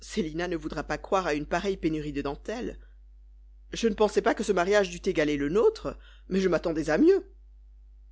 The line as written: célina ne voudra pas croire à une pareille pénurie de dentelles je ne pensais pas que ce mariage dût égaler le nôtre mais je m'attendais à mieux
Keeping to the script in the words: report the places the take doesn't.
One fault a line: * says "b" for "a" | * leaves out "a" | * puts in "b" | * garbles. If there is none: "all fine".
all fine